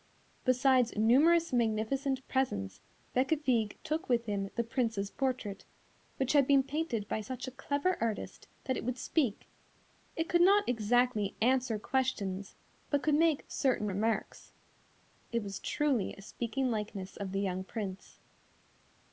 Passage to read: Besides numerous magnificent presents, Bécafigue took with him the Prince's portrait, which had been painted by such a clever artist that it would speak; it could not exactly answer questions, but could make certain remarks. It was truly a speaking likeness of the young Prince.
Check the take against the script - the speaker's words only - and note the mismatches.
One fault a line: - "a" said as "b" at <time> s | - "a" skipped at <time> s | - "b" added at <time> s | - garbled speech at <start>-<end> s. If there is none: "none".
none